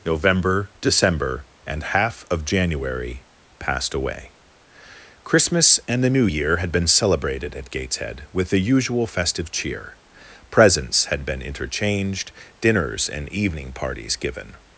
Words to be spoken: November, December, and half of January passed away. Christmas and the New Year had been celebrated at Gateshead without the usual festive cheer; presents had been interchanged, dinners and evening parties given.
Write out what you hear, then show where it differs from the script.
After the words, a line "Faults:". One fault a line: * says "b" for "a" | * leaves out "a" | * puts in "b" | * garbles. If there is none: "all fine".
November, December, and half of January passed away. Christmas and the New Year had been celebrated at Gateshead with the usual festive cheer; presents had been interchanged, dinners and evening parties given.
Faults:
* says "with" for "without"